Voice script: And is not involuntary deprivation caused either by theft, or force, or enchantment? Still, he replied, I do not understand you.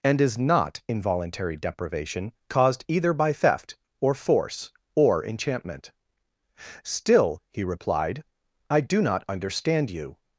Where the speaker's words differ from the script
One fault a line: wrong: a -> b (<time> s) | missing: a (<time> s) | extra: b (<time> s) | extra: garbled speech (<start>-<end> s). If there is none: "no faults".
no faults